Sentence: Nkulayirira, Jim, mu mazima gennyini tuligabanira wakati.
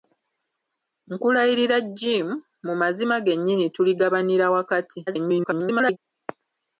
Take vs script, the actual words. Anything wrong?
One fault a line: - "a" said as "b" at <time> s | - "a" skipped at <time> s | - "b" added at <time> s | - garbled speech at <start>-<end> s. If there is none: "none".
- garbled speech at 5.1-6.0 s